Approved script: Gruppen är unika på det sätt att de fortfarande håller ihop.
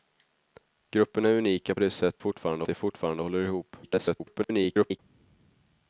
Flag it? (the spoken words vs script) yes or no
yes